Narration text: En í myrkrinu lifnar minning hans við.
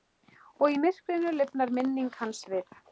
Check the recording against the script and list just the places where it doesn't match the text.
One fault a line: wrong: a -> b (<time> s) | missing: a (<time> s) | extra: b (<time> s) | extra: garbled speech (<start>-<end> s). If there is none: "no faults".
wrong: En -> Og (0.6 s)